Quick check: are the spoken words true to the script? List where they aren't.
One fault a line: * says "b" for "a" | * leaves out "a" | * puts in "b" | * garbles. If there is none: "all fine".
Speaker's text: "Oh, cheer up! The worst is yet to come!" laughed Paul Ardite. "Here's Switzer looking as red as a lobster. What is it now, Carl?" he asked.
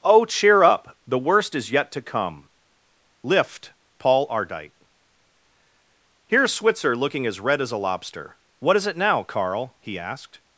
* says "lift" for "laughed"